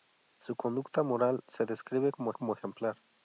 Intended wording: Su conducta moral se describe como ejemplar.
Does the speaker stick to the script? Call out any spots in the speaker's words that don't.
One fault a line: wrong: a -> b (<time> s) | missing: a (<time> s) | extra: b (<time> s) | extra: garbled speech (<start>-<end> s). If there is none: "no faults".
extra: como (2.3 s)